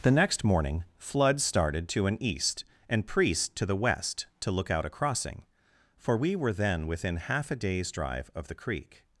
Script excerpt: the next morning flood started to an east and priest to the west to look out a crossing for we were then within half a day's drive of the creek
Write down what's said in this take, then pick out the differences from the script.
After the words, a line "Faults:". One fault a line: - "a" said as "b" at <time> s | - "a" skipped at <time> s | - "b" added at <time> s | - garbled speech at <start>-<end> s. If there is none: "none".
the next morning flood started to an east and priest to the west to look out a crossing for we were then within half a day's drive of the creek
Faults:
none